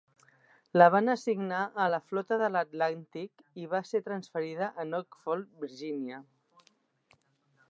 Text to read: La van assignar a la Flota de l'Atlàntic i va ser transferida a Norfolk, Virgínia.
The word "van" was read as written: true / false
true